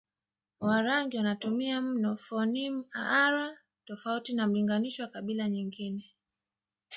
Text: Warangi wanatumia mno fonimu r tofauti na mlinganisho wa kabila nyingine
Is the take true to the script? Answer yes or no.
yes